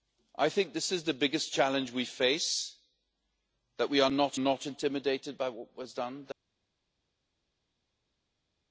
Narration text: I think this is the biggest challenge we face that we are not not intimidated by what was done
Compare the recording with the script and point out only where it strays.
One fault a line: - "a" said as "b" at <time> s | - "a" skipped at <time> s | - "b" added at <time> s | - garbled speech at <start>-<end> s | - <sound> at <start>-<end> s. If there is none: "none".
none